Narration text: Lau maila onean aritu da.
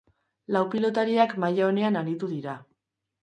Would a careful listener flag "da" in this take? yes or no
yes